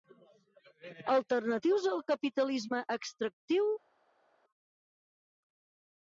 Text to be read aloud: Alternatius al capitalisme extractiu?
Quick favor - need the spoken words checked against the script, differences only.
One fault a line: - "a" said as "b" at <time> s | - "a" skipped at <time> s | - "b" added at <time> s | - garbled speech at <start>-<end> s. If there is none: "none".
none